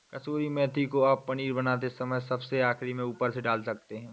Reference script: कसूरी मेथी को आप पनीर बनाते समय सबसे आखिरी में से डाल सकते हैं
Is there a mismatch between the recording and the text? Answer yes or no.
yes